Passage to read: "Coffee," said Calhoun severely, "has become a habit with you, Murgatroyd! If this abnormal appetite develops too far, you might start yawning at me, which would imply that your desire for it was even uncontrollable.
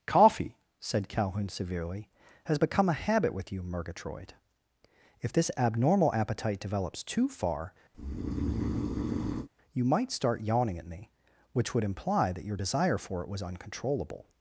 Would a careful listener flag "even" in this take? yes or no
yes